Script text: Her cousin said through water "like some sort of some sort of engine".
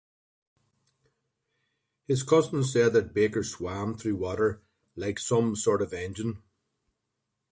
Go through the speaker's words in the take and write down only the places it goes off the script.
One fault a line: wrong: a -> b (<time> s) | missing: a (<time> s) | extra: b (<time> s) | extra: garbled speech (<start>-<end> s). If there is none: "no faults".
wrong: Her -> His (2.0 s)
extra: that Baker swam (2.9 s)
missing: some sort of (5.9 s)